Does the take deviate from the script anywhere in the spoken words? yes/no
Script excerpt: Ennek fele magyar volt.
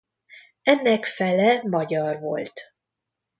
no